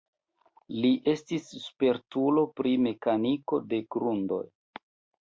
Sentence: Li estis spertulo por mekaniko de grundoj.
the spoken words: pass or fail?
fail